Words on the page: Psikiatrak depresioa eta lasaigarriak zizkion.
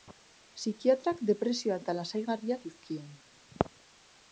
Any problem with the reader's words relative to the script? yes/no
no